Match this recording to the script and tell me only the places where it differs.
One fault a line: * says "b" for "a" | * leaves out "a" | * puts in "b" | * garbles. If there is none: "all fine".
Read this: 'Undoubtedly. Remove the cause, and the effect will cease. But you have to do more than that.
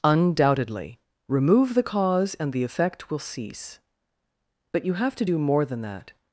all fine